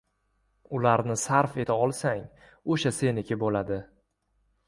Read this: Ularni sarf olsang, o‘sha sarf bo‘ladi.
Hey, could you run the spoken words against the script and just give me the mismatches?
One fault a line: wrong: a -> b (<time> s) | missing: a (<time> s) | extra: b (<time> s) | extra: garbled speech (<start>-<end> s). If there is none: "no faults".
extra: eta (1.6 s)
wrong: sarf -> seniki (3.0 s)